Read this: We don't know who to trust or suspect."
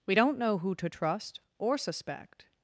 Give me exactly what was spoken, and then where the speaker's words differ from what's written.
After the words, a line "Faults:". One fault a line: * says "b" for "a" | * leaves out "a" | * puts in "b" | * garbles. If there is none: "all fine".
We don't know who to trust or suspect."
Faults:
all fine